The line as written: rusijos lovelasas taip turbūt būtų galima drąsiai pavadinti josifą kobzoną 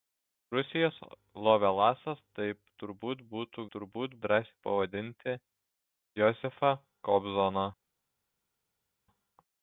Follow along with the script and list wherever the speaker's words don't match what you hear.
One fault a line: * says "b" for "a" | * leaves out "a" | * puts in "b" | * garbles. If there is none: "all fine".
* says "turbūt" for "galima"